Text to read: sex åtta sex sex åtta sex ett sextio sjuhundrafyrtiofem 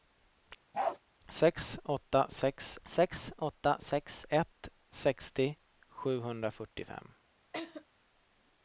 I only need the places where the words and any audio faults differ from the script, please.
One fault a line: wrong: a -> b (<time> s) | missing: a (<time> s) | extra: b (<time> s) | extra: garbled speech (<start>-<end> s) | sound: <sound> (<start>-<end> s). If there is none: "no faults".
sound: bark (0.7-1.0 s)
sound: laugh (7.5-7.8 s)